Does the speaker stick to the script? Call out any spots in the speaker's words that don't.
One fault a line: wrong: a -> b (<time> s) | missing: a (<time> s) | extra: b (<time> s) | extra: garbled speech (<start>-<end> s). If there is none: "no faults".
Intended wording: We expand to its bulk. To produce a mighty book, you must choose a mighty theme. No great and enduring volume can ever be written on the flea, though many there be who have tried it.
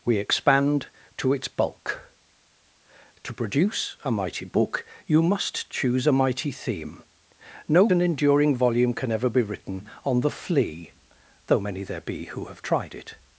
missing: great (7.9 s)